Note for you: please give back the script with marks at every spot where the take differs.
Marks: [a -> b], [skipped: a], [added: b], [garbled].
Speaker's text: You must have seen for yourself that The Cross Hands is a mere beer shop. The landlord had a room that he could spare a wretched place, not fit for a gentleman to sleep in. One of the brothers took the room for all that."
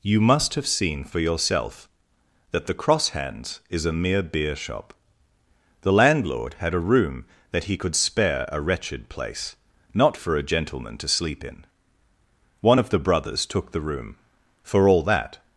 You must have seen for yourself that The Cross Hands is a mere beer shop. The landlord had a room that he could spare a wretched place, not [skipped: fit] for a gentleman to sleep in. One of the brothers took the room for all that."